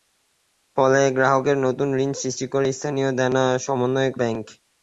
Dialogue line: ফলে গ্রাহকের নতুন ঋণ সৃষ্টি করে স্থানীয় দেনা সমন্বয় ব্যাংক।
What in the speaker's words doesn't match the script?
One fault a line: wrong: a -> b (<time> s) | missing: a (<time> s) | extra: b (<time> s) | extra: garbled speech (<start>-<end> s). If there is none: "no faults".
no faults